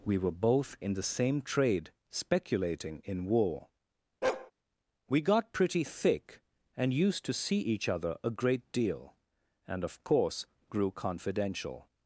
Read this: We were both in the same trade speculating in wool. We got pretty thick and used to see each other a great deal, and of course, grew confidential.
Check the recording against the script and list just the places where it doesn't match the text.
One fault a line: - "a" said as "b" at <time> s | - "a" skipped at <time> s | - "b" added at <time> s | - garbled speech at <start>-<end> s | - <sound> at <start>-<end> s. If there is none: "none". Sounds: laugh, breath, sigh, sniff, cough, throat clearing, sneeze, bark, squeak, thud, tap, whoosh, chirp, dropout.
- "wool" said as "war" at 3.2 s
- bark at 4.2-4.5 s